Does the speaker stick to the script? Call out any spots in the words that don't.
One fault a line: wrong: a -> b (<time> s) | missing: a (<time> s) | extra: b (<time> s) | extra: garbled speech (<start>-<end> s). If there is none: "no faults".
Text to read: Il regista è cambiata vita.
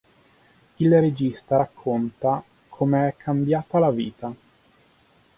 extra: racconta come (1.6 s)
extra: la (3.8 s)